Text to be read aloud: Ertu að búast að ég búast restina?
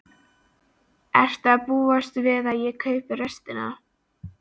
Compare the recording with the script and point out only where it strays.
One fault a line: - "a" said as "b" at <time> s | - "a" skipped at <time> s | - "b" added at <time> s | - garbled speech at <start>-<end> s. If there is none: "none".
- "við" added at 2.3 s
- "búast" said as "kaupi" at 2.9 s